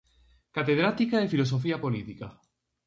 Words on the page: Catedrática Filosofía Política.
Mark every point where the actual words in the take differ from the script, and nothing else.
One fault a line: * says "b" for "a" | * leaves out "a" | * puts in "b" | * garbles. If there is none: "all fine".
* puts in "de"